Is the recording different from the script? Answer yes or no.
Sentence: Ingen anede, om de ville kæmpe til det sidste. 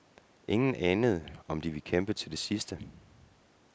no